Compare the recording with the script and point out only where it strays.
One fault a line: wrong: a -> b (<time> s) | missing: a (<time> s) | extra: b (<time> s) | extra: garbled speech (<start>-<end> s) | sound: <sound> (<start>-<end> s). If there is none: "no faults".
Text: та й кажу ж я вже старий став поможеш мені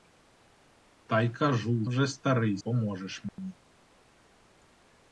missing: ж я (1.9 s)
missing: став (2.6 s)
sound: dropout (3.3-3.4 s)